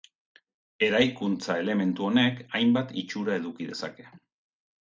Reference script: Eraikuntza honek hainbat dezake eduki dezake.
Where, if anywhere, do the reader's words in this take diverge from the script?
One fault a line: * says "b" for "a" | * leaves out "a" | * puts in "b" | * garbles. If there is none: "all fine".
* puts in "elementu"
* says "itxura" for "dezake"